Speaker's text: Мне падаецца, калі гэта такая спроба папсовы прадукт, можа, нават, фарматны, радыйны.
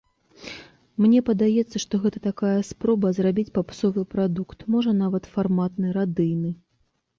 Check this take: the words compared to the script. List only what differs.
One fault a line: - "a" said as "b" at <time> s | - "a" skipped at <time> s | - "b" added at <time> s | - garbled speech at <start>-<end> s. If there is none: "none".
- "калі" said as "што" at 1.8 s
- "зрабіць" added at 3.2 s